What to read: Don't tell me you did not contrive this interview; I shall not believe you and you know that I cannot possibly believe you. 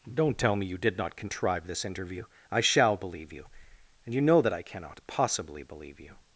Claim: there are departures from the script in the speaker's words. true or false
true